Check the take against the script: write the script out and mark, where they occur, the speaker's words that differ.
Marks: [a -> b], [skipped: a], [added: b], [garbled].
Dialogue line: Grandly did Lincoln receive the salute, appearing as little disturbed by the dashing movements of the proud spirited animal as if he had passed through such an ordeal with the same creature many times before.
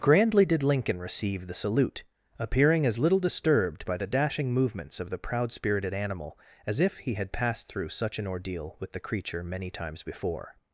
Grandly did Lincoln receive the salute, appearing as little disturbed by the dashing movements of the proud spirited animal as if he had passed through such an ordeal with the [skipped: same] creature many times before.